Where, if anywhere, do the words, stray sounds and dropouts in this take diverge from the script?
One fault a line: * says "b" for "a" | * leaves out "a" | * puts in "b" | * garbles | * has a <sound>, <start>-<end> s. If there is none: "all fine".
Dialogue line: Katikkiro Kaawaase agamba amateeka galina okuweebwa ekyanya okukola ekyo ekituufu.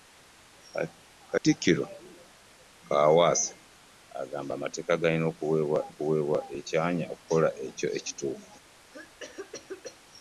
* has a dropout, 1.4-1.4 s
* puts in "okuweebwa"
* has a cough, 8.9-10.0 s